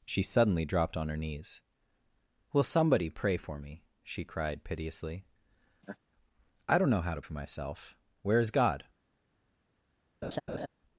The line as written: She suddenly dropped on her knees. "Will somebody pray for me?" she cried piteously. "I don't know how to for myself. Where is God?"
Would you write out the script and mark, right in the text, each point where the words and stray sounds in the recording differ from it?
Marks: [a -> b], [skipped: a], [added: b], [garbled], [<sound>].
She suddenly dropped on her knees. "Will somebody pray for me?" she cried piteously. [laugh] "I don't know how to for myself. Where is God?" [laugh]